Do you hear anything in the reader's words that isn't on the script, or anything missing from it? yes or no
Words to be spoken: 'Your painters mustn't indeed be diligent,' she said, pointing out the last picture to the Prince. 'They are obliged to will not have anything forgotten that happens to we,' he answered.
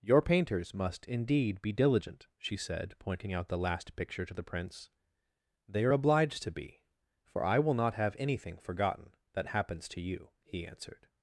yes